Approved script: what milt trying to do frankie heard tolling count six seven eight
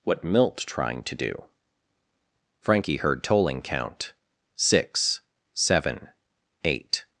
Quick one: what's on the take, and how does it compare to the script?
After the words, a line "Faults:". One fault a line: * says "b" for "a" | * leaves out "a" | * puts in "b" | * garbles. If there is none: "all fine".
what milt trying to do frankie heard tolling count six seven eight
Faults:
all fine